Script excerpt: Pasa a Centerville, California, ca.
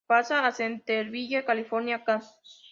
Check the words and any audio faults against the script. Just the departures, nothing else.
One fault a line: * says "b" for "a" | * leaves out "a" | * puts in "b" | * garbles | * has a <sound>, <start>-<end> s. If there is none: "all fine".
all fine